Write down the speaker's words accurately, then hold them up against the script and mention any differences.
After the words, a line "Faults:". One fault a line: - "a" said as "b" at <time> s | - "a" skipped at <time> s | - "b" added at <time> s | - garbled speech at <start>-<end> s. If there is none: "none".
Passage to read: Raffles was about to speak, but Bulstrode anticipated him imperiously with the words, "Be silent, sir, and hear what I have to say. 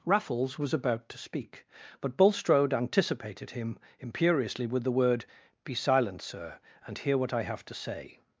Raffles was about to speak, but Bulstrode anticipated him imperiously with the word, "Be silent, sir, and hear what I have to say.
Faults:
- "words" said as "word" at 4.9 s